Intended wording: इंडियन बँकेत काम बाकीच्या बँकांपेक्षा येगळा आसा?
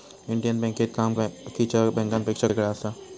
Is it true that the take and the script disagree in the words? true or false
false